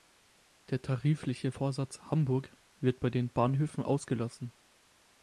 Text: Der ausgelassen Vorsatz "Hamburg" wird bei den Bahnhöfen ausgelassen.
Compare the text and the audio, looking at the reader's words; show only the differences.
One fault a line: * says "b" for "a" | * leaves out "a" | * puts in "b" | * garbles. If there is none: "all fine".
* says "tarifliche" for "ausgelassen"